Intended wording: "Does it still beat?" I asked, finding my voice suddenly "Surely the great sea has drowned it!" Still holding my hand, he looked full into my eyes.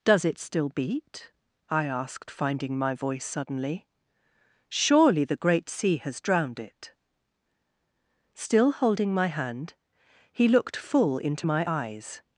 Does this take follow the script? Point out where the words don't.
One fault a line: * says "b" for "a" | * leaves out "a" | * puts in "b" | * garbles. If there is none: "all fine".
all fine